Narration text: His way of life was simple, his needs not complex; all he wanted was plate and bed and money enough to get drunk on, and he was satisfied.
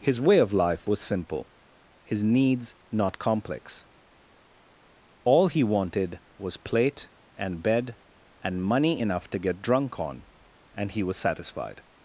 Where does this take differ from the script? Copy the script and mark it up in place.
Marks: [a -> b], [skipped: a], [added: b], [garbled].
His way of life was simple, his needs not complex; all he wanted was plate and bed and money enough to get drunk on, and he was satisfied.